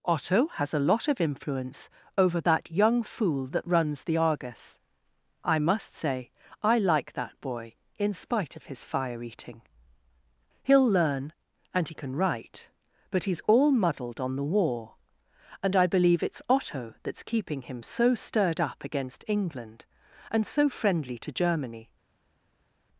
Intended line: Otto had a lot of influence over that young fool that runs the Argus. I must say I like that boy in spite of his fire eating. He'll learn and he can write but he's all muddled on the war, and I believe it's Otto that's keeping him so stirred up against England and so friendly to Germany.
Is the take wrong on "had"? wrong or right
wrong